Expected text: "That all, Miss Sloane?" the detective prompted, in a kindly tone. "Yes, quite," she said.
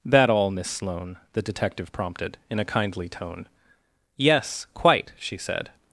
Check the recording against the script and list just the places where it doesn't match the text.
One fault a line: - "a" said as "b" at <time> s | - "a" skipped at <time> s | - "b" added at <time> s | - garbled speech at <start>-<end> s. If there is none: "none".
none